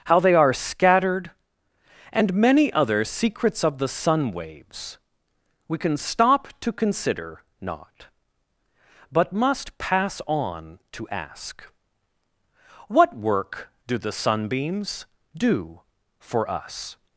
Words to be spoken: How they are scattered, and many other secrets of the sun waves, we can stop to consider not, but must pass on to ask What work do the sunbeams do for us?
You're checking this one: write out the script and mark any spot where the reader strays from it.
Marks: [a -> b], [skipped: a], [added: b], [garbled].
How they are scattered, and many other secrets of the sun waves, we can stop to consider not, but must pass on to ask What work do the sunbeams do for us?